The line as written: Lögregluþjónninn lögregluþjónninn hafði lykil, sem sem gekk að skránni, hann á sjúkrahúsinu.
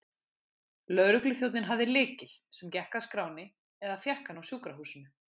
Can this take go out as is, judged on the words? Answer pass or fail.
fail